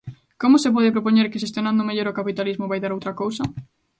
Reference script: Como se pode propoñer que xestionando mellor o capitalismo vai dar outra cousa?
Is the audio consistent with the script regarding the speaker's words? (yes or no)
yes